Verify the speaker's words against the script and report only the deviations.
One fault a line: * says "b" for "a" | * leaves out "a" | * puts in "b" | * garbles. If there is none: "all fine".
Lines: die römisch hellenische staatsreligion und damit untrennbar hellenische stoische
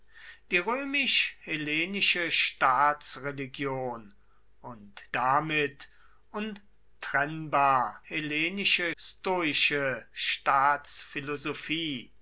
all fine